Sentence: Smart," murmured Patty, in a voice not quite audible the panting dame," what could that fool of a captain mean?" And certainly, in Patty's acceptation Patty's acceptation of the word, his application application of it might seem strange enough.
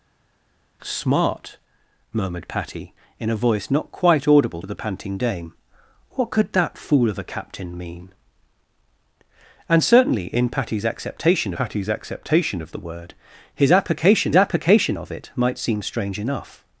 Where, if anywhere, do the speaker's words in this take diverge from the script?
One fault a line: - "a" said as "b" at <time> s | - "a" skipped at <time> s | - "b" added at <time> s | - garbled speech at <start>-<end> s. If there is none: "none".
none